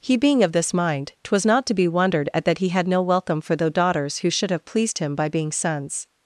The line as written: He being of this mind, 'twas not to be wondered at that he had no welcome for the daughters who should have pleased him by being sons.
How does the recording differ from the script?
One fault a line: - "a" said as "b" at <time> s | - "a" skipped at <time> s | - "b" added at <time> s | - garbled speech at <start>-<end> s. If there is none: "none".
none